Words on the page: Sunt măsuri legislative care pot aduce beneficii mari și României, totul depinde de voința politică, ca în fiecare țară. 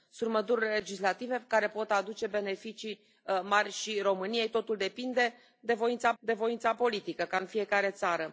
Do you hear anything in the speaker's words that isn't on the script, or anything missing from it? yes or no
yes